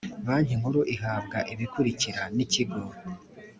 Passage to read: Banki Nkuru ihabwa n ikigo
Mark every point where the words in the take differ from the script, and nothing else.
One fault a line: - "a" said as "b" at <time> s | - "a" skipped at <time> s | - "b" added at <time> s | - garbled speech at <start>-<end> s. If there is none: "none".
- "ibikurikira" added at 1.5 s